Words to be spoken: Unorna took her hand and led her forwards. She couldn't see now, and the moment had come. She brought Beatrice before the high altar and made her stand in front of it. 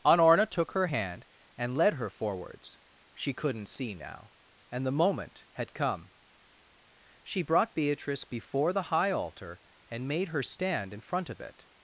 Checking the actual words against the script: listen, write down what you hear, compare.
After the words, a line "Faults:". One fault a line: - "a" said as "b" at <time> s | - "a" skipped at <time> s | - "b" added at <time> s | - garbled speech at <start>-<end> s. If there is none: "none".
Unorna took her hand and led her forwards. She couldn't see now, and the moment had come. She brought Beatrice before the high altar and made her stand in front of it.
Faults:
none